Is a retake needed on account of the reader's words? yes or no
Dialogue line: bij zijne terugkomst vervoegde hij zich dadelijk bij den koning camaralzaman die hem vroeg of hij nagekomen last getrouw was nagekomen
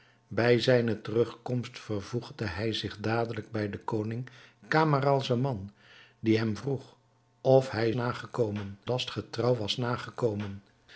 no